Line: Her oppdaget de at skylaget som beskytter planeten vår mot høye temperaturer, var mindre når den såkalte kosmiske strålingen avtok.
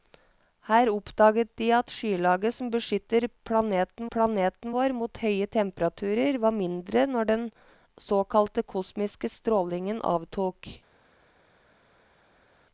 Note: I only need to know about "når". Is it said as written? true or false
true